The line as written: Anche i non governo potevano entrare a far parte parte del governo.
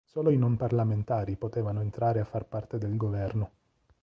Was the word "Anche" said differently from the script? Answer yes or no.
yes